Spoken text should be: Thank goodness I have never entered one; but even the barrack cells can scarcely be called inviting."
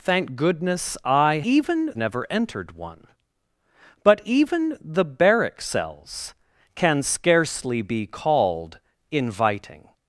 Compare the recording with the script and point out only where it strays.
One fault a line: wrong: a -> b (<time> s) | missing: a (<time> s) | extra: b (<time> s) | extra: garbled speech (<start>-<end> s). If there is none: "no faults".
wrong: have -> even (1.4 s)